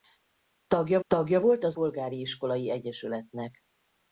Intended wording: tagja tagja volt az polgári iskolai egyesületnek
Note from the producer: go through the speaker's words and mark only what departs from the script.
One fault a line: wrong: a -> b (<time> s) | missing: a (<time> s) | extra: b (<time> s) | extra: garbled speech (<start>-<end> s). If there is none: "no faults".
no faults